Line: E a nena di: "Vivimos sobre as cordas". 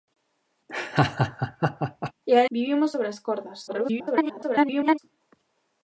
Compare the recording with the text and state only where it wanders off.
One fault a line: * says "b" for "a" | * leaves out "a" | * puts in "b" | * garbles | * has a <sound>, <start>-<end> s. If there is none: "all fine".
* has a laugh, 0.7-2.1 s
* leaves out "nena di"
* garbles